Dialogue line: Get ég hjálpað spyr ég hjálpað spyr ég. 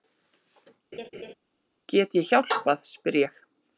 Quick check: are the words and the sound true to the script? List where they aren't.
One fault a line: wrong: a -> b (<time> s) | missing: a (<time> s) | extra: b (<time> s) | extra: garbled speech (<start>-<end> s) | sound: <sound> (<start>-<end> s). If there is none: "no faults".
sound: laugh (0.9-1.3 s)
missing: hjálpað spyr ég (3.4 s)